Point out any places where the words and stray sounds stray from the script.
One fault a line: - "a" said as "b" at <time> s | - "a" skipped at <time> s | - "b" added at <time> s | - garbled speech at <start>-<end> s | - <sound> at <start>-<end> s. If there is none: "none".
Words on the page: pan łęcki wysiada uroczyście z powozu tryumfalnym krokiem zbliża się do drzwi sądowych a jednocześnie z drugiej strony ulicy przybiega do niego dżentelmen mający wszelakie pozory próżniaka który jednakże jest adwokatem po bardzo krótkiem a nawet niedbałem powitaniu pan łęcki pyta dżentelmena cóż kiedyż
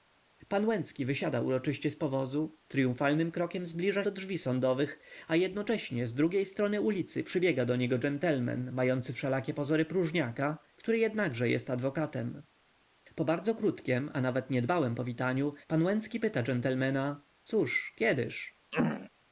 - "się" skipped at 4.0 s
- throat clearing at 18.7-19.1 s